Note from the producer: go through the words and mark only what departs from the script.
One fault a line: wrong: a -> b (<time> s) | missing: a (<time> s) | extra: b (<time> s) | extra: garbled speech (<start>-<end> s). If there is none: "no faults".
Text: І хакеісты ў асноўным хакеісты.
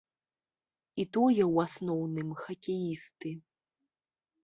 wrong: хакеісты -> тое (1.2 s)